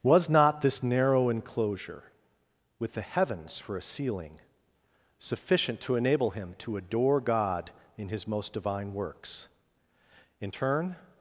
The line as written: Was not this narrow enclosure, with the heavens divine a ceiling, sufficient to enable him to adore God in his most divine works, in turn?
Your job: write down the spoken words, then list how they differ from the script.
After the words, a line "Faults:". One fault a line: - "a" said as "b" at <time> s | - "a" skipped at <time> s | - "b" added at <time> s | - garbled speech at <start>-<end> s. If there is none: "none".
Was not this narrow enclosure, with the heavens for a ceiling, sufficient to enable him to adore God in his most divine works, in turn?
Faults:
- "divine" said as "for" at 3.6 s